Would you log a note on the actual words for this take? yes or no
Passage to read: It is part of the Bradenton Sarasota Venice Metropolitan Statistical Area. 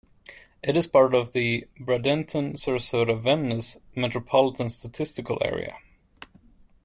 no